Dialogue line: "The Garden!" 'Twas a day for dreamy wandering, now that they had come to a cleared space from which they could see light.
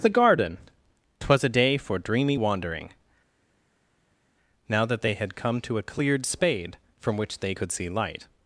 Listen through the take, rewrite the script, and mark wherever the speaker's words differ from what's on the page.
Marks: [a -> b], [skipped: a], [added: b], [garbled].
"The Garden!" 'Twas a day for dreamy wandering, now that they had come to a cleared [space -> spade] from which they could see light.